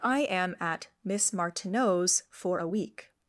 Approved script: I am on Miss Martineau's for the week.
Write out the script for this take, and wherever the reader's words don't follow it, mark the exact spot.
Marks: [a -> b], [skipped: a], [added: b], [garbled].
I am [on -> at] Miss Martineau's for [the -> a] week.